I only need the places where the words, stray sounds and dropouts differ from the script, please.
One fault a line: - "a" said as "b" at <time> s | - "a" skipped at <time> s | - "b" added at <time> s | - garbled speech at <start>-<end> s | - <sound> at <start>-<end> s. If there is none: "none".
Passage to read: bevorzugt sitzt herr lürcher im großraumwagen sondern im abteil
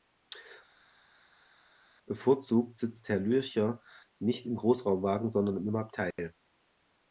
- "nicht" added at 4.2 s